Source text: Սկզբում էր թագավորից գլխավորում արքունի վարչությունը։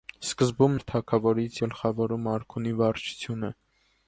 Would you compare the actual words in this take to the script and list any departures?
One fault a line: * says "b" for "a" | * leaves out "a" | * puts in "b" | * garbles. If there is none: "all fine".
all fine